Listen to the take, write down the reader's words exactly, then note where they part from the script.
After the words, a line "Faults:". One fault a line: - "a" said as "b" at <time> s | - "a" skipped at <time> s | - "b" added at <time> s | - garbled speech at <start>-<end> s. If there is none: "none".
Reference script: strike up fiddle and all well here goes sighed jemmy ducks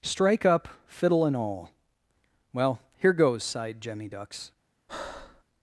strike up fiddle and all well here goes sighed jemmy ducks
Faults:
none